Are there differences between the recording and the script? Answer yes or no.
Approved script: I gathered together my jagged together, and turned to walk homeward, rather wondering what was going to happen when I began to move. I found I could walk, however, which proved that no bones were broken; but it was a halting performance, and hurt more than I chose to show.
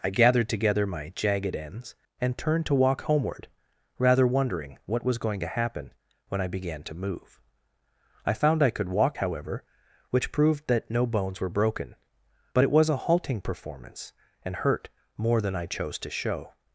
yes